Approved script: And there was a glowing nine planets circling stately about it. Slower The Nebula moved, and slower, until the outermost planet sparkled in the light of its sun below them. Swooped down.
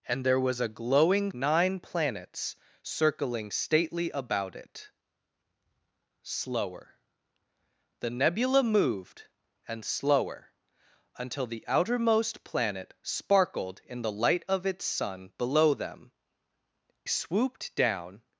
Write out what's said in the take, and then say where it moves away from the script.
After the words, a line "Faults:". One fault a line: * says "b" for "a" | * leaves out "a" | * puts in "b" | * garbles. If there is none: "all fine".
And there was a glowing nine planets circling stately about it. Slower The Nebula moved, and slower, until the outermost planet sparkled in the light of its sun below them. Swooped down.
Faults:
all fine